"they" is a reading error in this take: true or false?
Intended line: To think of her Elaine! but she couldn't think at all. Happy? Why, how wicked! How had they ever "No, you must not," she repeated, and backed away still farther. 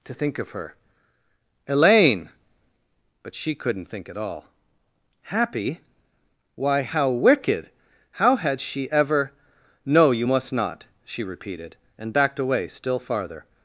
true